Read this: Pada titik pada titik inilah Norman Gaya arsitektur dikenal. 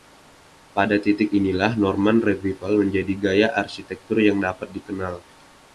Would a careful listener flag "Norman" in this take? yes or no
yes